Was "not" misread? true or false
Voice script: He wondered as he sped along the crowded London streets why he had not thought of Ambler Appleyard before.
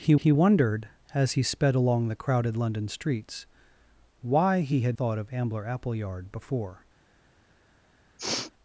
true